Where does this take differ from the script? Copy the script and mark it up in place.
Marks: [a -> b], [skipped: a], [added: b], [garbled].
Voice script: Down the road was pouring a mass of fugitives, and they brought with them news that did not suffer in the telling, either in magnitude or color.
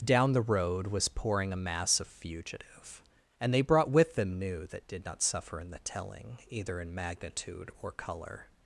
Down the road was pouring a mass of [fugitives, -> fugitive] and they brought with them [news -> new] that did not suffer in the telling, either in magnitude or color.